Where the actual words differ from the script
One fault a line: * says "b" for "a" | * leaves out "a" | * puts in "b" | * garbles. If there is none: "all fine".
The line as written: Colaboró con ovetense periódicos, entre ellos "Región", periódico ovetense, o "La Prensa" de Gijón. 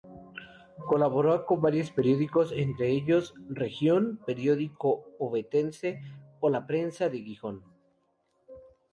* says "varios" for "ovetense"